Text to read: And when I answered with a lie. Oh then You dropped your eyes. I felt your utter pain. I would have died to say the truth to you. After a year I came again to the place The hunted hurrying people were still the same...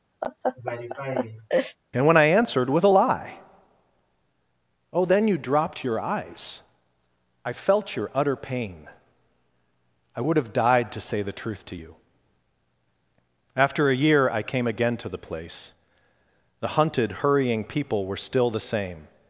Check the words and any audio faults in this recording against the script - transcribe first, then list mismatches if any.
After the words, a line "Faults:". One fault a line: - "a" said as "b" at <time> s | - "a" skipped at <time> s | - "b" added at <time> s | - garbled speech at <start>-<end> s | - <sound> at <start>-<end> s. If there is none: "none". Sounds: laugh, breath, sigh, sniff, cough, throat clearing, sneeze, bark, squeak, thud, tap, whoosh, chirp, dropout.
And when I answered with a lie. Oh then You dropped your eyes. I felt your utter pain. I would have died to say the truth to you. After a year I came again to the place The hunted hurrying people were still the same...
Faults:
- laugh at 0.2-1.8 s